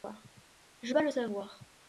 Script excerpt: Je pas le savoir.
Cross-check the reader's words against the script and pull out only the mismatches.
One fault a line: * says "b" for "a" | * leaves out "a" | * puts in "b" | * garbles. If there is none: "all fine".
all fine